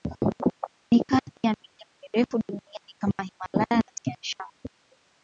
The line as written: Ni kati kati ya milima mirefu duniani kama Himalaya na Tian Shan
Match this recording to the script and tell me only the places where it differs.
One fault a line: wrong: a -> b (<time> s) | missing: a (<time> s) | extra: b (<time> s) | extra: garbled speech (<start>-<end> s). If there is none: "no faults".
missing: kati (1.3 s)